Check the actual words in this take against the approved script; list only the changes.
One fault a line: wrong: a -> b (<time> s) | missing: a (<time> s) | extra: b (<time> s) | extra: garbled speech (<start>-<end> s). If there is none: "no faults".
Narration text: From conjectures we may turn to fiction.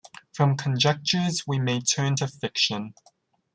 no faults